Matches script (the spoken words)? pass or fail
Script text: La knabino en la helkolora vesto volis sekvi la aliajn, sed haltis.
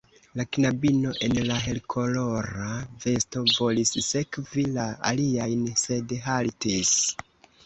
pass